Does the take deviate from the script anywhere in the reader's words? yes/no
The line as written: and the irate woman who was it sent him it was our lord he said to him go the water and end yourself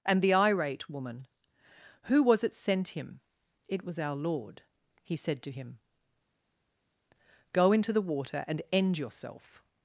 yes